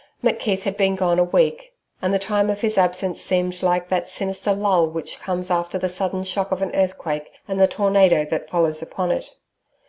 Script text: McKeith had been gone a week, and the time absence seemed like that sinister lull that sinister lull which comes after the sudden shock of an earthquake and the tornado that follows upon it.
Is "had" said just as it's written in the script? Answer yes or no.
yes